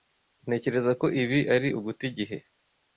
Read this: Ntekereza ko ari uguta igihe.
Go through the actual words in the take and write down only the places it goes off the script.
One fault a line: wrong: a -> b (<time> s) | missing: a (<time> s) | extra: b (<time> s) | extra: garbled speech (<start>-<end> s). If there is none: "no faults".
extra: ibi (1.2 s)